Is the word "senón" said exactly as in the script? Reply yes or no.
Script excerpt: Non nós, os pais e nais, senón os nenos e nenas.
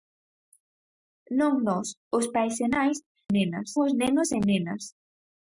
no